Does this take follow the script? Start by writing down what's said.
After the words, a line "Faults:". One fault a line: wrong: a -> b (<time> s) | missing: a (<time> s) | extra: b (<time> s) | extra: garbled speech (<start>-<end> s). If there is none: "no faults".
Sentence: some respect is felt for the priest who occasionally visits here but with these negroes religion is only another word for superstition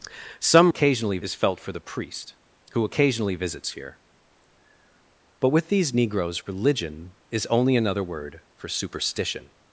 some occasionally is felt for the priest who occasionally visits here but with these negroes religion is only another word for superstition
Faults:
wrong: respect -> occasionally (0.7 s)